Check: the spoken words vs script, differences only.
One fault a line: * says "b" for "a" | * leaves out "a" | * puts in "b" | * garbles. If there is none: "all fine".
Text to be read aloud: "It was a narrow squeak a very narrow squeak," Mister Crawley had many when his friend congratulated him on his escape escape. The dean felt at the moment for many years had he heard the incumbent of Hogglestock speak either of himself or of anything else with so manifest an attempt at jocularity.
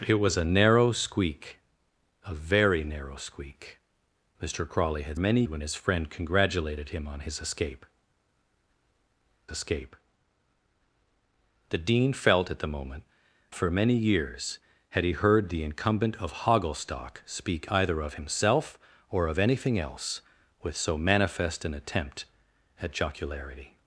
all fine